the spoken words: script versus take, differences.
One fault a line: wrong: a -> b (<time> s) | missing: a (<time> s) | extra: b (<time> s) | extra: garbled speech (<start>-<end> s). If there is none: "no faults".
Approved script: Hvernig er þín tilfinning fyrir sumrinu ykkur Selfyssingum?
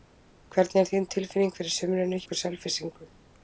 no faults